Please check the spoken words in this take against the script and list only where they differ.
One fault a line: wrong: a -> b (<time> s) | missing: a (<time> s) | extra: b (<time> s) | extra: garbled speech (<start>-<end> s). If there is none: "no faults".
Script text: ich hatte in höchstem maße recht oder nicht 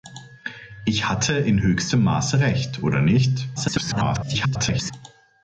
extra: garbled speech (3.6-4.9 s)